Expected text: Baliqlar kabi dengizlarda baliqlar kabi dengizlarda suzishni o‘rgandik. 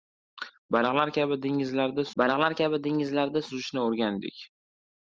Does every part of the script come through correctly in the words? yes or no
yes